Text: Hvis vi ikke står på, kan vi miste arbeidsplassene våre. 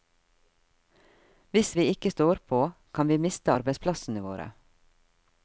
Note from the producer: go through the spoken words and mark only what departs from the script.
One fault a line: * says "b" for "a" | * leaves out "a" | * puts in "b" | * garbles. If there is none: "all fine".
all fine